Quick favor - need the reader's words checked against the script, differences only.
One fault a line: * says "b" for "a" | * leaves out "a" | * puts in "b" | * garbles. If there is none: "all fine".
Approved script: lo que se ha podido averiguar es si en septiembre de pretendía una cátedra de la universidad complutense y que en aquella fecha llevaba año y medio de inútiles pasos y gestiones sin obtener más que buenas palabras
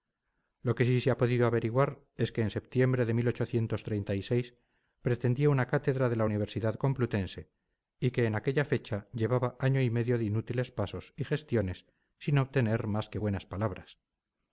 * puts in "sí"
* says "que" for "si"